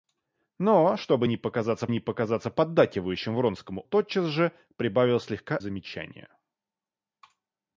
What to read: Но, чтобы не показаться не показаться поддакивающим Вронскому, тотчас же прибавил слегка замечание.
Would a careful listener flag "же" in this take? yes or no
no